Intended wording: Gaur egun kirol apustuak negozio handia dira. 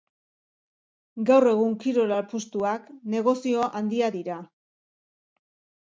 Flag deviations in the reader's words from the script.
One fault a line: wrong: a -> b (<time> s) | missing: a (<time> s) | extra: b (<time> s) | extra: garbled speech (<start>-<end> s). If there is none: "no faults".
no faults